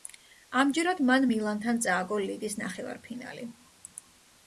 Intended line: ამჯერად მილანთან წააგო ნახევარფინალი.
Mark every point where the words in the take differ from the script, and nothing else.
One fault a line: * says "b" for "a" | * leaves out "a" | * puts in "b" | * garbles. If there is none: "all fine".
* puts in "მან"
* puts in "ლიგის"